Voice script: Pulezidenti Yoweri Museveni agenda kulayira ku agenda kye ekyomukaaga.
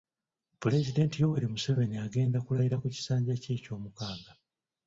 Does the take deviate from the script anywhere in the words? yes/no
yes